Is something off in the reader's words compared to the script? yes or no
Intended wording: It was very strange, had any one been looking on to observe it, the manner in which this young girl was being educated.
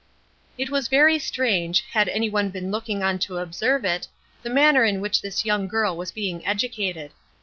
no